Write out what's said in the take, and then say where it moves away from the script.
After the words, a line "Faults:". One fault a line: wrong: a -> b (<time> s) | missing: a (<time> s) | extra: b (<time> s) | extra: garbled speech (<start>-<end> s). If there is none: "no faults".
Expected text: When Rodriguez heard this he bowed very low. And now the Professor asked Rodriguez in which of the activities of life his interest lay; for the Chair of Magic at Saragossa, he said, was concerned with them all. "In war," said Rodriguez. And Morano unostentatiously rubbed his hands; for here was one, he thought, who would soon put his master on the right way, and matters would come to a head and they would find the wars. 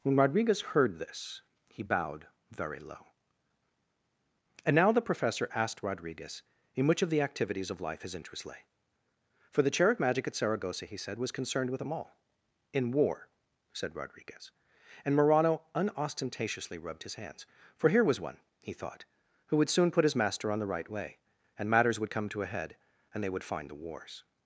When Rodriguez heard this he bowed very low. And now the Professor asked Rodriguez in which of the activities of life his interest lay; for the Chair of Magic at Saragossa, he said, was concerned with them all. "In war," said Rodriguez. And Morano unostentatiously rubbed his hands; for here was one, he thought, who would soon put his master on the right way, and matters would come to a head and they would find the wars.
Faults:
no faults